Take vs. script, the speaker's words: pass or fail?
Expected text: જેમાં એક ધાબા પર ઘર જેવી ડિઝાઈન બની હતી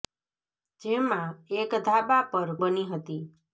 fail